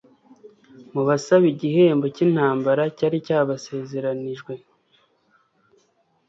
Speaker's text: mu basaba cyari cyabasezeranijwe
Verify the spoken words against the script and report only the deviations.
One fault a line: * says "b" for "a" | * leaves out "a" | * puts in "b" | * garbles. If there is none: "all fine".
* puts in "igihembo cy'intambara"